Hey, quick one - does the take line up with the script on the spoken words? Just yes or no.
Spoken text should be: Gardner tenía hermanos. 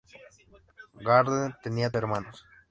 yes